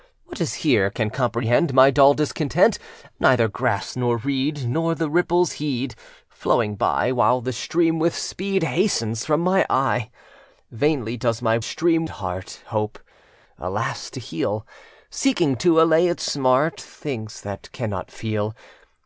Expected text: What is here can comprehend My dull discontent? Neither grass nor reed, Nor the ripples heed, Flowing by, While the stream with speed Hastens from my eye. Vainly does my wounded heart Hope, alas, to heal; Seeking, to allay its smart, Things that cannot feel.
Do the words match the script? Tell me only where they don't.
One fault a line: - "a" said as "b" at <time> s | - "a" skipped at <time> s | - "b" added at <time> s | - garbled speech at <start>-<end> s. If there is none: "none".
- "wounded" said as "stream" at 11.6 s